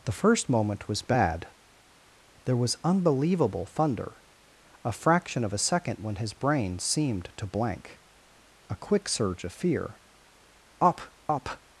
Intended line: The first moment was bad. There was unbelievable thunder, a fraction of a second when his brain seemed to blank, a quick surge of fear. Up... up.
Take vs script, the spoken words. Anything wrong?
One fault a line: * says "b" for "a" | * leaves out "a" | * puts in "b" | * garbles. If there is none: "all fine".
all fine